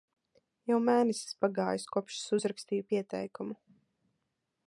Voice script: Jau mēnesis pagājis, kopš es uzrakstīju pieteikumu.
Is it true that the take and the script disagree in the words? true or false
false